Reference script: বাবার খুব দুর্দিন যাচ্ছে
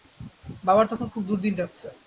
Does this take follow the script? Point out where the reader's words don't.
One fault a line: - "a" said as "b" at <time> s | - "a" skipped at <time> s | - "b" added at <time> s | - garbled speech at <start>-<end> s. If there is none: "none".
- "তখন" added at 0.9 s